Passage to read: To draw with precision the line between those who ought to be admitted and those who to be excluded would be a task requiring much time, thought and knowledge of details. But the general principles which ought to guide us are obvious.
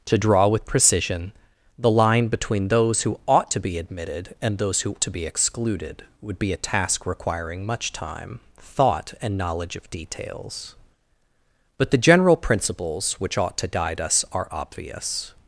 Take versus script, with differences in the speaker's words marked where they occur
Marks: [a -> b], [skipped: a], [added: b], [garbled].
To draw with precision the line between those who ought to be admitted and those who to be excluded would be a task requiring much time, thought and knowledge of details. But the general principles which ought to guide us are obvious.